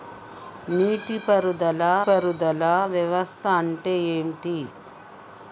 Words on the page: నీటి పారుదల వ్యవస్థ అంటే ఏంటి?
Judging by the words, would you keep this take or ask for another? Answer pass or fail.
fail